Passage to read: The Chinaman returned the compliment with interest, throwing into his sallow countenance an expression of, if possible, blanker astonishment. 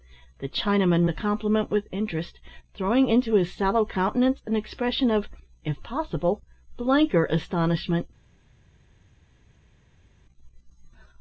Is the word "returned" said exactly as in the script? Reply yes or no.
no